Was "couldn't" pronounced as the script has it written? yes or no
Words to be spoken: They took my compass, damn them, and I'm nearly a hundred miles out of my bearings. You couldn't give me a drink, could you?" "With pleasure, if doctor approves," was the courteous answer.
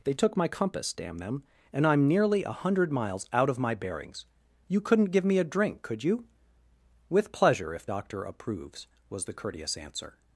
yes